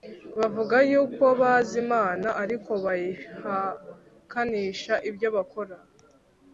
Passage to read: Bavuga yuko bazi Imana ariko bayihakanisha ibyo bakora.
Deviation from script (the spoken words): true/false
false